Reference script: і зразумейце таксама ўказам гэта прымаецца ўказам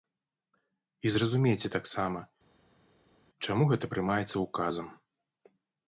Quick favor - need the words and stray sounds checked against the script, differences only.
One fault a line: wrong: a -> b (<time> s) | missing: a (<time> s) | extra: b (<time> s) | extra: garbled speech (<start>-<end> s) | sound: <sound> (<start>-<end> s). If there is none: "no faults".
wrong: ўказам -> чаму (3.5 s)